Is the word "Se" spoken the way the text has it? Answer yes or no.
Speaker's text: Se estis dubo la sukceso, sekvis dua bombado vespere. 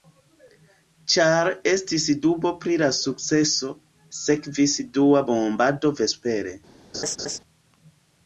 no